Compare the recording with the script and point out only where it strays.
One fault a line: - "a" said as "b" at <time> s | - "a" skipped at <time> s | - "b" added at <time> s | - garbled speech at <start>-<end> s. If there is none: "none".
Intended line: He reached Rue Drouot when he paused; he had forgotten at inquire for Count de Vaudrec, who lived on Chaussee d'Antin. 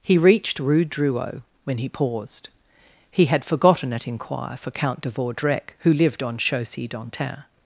none